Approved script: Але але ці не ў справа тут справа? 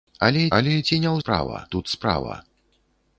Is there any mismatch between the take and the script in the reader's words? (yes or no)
no